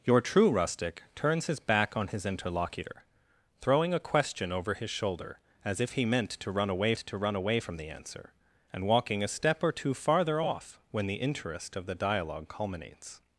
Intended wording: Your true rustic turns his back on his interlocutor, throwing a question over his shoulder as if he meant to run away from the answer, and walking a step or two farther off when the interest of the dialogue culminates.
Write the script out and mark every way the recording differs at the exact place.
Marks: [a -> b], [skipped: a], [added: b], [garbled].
Your true rustic turns his back on his interlocutor, throwing a question over his shoulder as if he meant to run away [added: to run away] from the answer, and walking a step or two farther off when the interest of the dialogue culminates.